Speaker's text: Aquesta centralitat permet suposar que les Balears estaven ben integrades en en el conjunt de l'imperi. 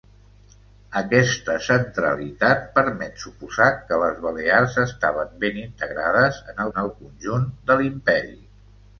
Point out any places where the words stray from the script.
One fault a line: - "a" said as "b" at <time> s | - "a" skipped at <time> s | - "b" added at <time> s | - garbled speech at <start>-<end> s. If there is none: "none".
none